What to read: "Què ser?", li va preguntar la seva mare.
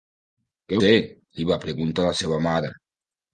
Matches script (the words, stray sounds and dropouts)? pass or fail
pass